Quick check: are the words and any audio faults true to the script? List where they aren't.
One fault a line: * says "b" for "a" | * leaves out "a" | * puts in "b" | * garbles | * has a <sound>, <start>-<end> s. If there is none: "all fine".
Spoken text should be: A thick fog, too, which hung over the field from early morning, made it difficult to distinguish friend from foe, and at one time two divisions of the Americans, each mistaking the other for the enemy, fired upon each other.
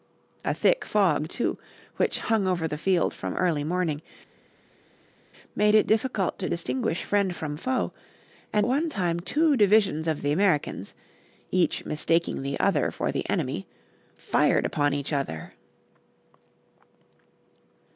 * leaves out "at"